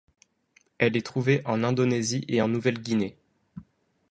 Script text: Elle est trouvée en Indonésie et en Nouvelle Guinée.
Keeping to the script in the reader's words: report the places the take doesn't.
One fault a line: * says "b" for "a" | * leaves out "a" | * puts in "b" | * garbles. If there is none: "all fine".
all fine